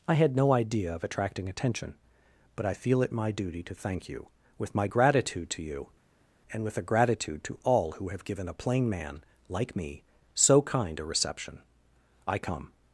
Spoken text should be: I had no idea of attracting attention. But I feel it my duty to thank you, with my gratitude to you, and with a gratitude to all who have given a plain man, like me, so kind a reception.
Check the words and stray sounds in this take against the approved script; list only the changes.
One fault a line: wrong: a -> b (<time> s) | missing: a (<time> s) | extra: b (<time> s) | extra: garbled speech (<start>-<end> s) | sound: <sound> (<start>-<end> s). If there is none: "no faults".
extra: I come (12.3 s)